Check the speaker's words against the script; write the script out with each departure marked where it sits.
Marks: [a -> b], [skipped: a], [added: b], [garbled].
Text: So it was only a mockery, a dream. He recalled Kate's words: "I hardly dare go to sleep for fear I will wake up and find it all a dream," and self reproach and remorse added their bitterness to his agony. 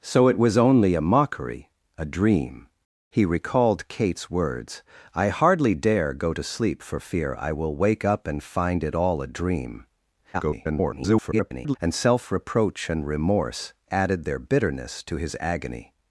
So it was only a mockery, a dream. He recalled Kate's words: "I hardly dare go to sleep for fear I will wake up and find it all a dream," [garbled] and self reproach and remorse added their bitterness to his agony.